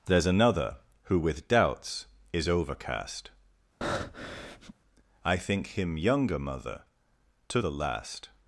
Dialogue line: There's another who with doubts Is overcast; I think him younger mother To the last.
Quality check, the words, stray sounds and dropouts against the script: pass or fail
fail